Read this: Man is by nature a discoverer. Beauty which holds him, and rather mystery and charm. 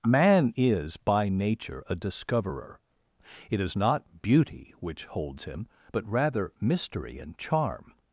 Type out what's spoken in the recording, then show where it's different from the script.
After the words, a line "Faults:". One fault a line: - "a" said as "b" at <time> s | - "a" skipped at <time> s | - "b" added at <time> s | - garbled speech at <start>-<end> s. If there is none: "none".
Man is by nature a discoverer. It is not beauty which holds him, but rather mystery and charm.
Faults:
- "It is not" added at 3.5 s
- "and" said as "but" at 5.9 s